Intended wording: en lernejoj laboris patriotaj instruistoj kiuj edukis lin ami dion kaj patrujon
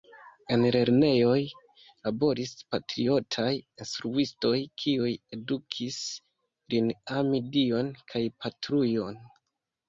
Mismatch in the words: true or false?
false